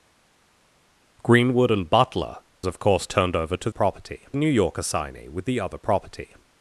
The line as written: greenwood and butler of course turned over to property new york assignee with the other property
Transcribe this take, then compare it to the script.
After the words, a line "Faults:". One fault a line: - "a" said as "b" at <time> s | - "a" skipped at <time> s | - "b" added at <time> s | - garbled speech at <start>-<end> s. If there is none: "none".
greenwood and butler of course turned over to property new york assignee with the other property
Faults:
none